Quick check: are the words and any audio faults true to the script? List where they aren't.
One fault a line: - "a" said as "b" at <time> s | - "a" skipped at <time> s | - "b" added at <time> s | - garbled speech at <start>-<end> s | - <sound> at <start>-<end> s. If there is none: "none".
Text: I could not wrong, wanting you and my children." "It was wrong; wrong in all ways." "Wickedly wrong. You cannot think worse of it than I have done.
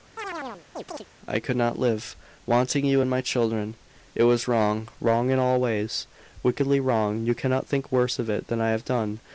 - chirp at 0.2-1.1 s
- "wrong" said as "live" at 1.8 s